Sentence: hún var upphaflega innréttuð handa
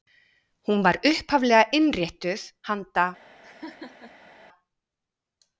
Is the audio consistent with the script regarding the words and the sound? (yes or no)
no